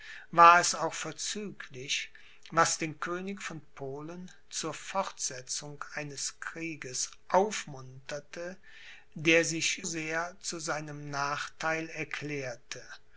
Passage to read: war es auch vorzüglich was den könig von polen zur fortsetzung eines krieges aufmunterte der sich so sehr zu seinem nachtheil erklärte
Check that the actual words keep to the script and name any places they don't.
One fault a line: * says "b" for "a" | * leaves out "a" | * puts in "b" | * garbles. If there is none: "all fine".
* leaves out "so"